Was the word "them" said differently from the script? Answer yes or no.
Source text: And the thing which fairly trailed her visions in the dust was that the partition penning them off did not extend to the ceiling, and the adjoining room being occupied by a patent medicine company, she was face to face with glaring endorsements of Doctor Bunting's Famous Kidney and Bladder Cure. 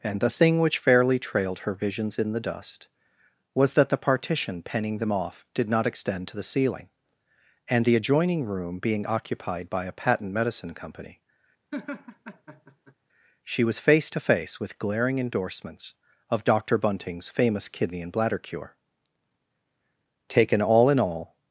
no